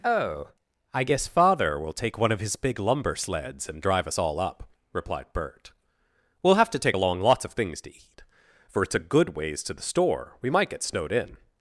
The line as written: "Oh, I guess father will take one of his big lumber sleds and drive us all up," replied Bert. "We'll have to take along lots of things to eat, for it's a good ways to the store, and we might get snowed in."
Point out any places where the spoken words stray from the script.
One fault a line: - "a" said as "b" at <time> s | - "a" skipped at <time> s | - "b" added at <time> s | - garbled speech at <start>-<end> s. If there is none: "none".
- "and" skipped at 10.4 s